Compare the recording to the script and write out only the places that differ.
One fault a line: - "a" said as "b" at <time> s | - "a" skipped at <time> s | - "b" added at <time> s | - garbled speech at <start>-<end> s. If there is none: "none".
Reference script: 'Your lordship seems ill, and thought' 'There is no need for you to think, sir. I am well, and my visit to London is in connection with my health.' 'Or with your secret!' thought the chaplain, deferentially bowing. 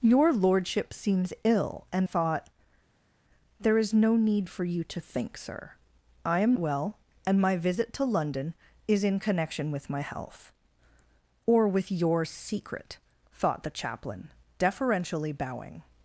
none